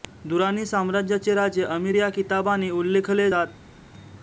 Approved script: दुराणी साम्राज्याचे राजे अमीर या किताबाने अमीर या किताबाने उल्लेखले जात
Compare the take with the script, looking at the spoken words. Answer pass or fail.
fail